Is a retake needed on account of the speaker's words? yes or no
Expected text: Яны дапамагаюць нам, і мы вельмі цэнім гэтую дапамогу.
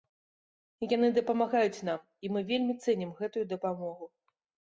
no